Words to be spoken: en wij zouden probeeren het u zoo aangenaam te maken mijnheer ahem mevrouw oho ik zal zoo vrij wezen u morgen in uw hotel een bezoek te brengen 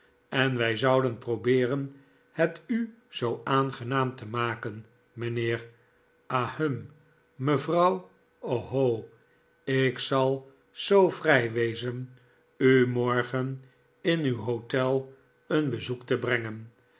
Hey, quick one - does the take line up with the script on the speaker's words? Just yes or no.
yes